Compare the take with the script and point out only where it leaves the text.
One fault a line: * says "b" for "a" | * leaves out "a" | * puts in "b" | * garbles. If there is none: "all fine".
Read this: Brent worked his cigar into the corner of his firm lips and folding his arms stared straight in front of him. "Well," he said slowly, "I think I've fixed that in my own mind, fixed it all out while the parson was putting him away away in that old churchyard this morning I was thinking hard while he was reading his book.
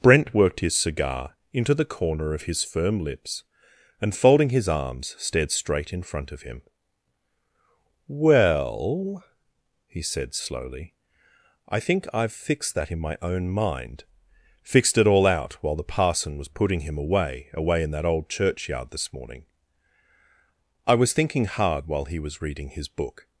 all fine